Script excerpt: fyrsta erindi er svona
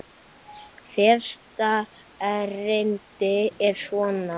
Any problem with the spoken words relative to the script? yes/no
no